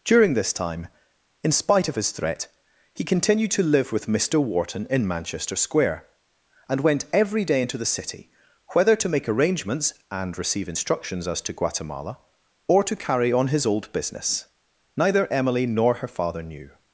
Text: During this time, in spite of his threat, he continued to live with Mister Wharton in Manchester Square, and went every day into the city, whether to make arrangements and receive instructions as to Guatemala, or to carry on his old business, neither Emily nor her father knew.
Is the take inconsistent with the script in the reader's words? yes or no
no